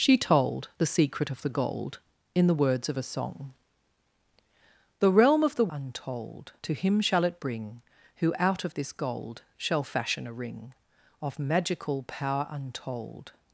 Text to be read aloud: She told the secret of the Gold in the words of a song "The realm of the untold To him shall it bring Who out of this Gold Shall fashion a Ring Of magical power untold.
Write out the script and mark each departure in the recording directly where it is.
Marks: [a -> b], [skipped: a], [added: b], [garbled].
She told the secret of the Gold in the words of a song "The realm of the untold To him shall it bring Who out of this Gold Shall fashion a Ring Of magical power untold.